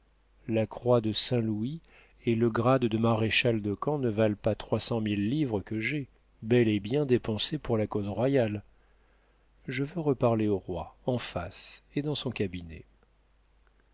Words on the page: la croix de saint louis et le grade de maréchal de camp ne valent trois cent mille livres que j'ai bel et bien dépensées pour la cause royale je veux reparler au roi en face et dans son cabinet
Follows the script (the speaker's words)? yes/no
no